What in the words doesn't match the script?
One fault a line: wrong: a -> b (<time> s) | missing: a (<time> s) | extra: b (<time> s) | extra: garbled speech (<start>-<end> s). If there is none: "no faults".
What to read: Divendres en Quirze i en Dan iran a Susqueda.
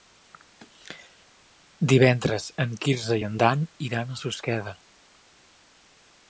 no faults